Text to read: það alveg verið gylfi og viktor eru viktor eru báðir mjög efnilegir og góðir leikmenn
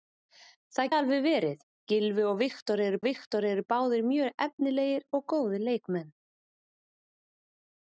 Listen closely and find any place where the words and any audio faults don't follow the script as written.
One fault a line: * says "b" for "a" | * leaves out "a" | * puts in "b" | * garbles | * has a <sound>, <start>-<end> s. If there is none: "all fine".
all fine